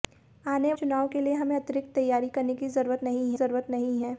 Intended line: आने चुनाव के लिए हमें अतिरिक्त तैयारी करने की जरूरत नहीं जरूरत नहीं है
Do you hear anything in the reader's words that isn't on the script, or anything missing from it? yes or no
no